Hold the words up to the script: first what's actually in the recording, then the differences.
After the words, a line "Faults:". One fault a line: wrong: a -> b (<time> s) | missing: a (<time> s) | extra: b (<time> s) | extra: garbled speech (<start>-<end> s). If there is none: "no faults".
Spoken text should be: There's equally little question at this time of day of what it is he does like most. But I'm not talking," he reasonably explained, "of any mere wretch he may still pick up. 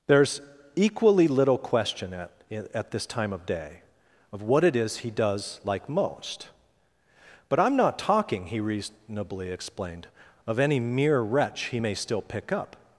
There's equally little question at at this time of day of what it is he does like most. But I'm not talking," he reasonably explained, "of any mere wretch he may still pick up.
Faults:
extra: at (2.7 s)